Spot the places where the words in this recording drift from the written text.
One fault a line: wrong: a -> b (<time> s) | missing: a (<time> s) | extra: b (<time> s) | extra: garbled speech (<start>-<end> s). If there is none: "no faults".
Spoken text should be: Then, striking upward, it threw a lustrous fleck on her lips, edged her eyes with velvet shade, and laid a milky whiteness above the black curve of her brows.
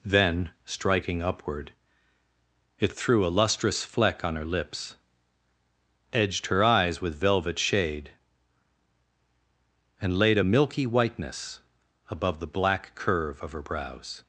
no faults